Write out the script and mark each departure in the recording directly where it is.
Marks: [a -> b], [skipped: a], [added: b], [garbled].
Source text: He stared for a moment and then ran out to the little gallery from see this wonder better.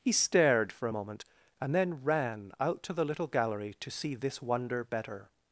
He stared for a moment and then ran out to the little gallery [from -> to] see this wonder better.